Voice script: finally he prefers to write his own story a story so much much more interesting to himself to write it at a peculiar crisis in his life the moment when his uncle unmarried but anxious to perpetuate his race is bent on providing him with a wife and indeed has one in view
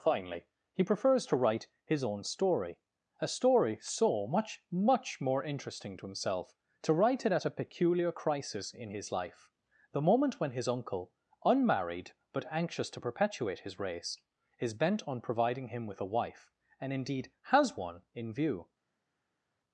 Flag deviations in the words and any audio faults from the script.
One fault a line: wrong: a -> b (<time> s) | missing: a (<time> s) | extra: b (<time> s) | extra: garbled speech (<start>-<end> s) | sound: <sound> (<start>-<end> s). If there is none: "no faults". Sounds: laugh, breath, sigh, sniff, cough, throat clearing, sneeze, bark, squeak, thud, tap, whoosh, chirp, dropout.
no faults